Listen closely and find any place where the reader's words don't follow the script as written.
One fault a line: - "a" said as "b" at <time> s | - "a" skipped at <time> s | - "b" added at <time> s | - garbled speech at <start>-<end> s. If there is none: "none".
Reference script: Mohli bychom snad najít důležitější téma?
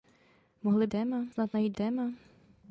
- "bychom" said as "téma" at 0.9 s
- "důležitější" skipped at 1.8 s